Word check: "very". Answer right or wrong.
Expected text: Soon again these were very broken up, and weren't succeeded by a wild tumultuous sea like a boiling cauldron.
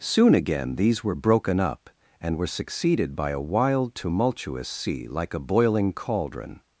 wrong